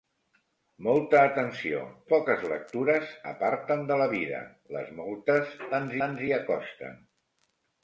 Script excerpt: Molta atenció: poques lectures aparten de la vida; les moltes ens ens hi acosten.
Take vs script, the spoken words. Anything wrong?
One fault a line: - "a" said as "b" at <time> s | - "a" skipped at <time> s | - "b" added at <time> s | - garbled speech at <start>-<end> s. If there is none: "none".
none